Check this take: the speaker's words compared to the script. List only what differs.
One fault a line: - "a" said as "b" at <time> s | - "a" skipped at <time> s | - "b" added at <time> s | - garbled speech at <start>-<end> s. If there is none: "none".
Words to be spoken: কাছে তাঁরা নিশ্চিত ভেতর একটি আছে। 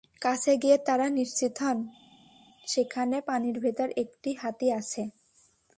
- "গিয়ে" added at 0.6 s
- "হন সেখানে পানির" added at 1.6 s
- "হাতি" added at 4.3 s